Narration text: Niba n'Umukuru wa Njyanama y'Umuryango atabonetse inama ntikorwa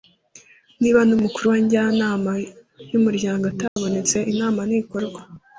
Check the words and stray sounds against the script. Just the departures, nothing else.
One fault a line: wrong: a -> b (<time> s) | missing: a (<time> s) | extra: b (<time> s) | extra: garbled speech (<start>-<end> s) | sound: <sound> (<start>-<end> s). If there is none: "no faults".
sound: dropout (3.7-3.8 s)